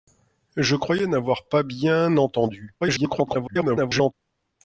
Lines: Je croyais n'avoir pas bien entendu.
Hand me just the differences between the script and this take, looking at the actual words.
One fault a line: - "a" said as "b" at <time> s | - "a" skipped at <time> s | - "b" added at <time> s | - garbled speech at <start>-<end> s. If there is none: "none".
- garbled speech at 2.8-4.1 s